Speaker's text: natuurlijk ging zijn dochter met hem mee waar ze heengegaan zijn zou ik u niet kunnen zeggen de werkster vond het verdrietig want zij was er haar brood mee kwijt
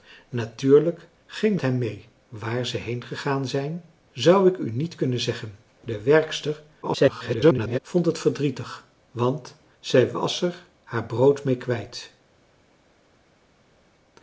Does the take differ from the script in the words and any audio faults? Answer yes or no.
yes